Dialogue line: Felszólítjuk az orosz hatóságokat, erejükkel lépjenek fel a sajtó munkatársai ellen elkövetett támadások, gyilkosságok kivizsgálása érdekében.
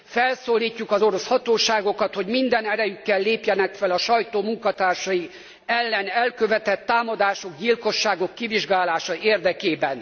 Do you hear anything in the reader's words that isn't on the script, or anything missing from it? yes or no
yes